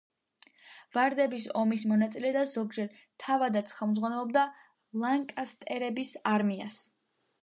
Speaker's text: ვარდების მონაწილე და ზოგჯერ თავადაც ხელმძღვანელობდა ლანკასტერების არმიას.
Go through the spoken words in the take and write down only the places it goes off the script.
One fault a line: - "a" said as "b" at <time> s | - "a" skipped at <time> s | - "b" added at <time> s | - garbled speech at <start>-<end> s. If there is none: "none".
- "ომის" added at 1.6 s